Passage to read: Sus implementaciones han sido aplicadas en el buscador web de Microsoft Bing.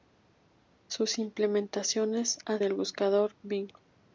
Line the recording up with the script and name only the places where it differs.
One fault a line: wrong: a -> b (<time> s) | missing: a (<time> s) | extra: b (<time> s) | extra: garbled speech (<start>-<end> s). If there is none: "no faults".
missing: sido aplicadas en (2.6 s)
missing: web de Microsoft (3.3 s)